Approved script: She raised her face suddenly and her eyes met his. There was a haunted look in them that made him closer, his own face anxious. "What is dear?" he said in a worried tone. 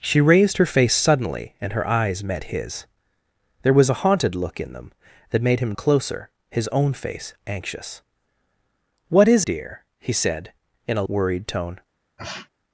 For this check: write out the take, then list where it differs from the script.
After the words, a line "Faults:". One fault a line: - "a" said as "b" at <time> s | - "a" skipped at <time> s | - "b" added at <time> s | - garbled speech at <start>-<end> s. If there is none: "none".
She raised her face suddenly and her eyes met his. There was a haunted look in them that made him closer, his own face anxious. "What is dear?" he said in a worried tone.
Faults:
none